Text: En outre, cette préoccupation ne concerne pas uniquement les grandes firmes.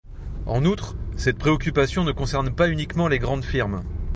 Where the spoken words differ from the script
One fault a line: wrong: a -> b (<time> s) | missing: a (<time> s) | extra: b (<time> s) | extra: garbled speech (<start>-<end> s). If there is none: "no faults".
no faults